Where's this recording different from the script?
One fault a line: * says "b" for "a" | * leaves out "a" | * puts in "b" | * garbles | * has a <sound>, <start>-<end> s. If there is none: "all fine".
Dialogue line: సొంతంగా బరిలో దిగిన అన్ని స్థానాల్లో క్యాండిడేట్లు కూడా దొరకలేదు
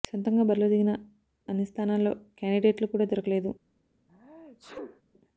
* has a sneeze, 4.1-5.0 s